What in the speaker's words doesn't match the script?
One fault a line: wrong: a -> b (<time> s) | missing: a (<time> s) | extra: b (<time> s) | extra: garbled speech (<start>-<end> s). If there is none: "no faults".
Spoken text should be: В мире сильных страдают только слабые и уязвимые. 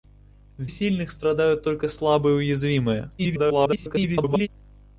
missing: мире (0.7 s)
extra: garbled speech (3.2-4.5 s)